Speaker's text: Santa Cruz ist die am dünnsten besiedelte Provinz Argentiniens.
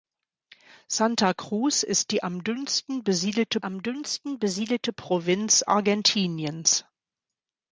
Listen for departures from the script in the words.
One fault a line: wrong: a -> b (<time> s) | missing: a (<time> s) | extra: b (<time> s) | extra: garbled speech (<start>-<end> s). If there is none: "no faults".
extra: am dünnsten besiedelte (3.6 s)